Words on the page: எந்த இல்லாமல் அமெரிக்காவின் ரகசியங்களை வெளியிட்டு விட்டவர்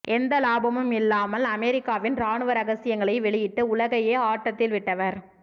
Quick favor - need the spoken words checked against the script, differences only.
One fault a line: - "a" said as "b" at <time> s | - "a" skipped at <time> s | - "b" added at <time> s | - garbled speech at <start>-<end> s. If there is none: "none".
- "லாபமும்" added at 0.4 s
- "ராணுவ" added at 2.1 s
- "உலகையே ஆட்டத்தில்" added at 3.7 s